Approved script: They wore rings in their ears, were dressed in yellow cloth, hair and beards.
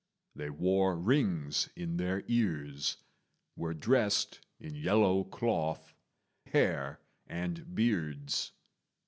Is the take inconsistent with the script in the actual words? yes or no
no